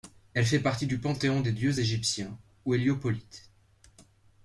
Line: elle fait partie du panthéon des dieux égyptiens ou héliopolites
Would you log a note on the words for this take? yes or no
no